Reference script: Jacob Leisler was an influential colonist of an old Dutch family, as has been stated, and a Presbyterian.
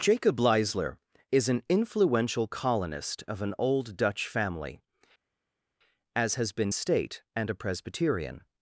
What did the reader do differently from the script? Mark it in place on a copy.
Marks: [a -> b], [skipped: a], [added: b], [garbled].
Jacob Leisler [was -> is] an influential colonist of an old Dutch family, as has been [stated, -> state] and a Presbyterian.